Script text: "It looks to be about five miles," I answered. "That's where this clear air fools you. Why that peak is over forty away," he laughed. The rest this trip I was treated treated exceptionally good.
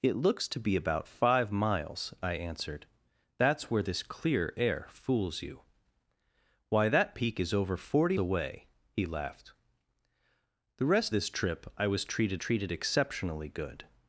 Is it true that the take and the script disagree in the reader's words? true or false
false